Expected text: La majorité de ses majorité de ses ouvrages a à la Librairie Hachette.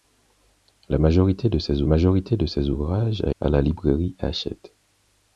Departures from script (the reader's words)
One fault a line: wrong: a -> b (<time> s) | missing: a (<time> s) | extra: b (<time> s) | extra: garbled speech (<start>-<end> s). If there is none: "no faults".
no faults